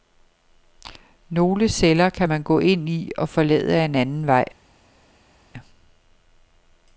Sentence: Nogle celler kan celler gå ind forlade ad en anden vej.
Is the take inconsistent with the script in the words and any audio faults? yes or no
yes